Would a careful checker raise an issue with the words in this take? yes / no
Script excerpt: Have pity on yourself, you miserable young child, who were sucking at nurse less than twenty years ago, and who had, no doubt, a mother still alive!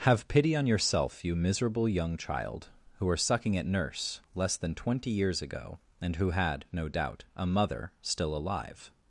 no